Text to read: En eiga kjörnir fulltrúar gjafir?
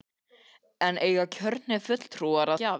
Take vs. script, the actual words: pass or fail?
pass